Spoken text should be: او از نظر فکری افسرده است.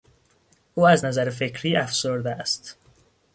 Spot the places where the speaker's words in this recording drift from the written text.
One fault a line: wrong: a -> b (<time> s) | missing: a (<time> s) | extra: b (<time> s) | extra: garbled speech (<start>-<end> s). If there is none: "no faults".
no faults